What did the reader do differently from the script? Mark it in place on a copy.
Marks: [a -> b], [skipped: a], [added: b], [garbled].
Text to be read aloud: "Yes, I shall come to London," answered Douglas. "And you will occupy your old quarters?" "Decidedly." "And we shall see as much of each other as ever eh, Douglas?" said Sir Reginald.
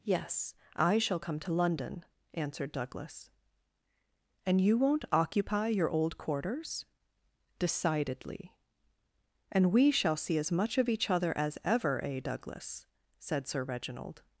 "Yes, I shall come to London," answered Douglas. "And you [will -> won't] occupy your old quarters?" "Decidedly." "And we shall see as much of each other as ever eh, Douglas?" said Sir Reginald.